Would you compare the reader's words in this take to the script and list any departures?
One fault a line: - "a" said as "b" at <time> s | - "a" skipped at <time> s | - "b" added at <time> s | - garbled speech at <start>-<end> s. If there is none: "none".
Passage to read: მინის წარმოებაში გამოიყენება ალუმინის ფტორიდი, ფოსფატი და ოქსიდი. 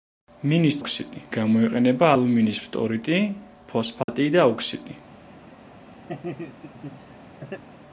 - "წარმოებაში" said as "ოქსიდი" at 0.8 s